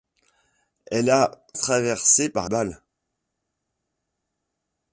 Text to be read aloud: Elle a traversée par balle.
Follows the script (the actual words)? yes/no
yes